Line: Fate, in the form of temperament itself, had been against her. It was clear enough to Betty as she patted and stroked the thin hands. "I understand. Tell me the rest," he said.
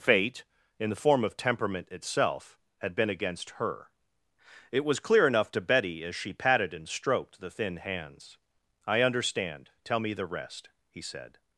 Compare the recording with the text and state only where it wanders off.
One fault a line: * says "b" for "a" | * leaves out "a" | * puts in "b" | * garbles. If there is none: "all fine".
all fine